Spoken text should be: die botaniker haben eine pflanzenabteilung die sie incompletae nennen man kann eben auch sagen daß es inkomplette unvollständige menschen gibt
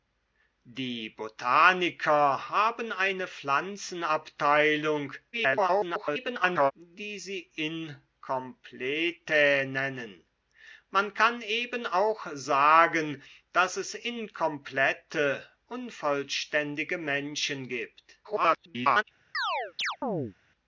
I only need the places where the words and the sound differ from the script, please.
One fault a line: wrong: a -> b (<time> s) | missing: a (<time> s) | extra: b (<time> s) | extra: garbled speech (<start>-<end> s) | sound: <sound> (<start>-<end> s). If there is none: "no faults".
extra: garbled speech (5.3-6.7 s)
extra: garbled speech (18.2-19.0 s)
sound: chirp (19.3-20.3 s)